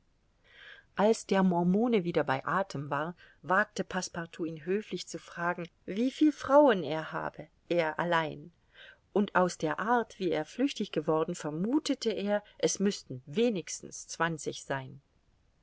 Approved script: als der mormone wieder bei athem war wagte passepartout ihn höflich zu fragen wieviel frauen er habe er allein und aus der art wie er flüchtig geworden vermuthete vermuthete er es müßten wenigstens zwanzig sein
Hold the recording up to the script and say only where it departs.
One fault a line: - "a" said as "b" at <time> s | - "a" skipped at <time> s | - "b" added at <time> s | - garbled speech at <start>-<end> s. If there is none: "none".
- "vermuthete" skipped at 12.1 s